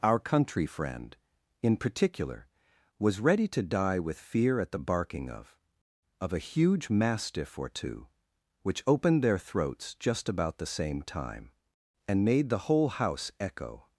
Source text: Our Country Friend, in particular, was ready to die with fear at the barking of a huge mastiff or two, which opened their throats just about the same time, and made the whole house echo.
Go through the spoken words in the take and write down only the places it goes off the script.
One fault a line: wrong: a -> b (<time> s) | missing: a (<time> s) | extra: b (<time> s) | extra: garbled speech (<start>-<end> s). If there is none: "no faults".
extra: of (6.2 s)